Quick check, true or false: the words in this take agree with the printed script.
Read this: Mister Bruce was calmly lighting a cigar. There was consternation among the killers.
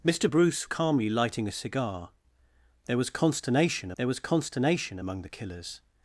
false